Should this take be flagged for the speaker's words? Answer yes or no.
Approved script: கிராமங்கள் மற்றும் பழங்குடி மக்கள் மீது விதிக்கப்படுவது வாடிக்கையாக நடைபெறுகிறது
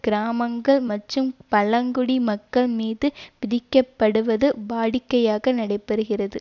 no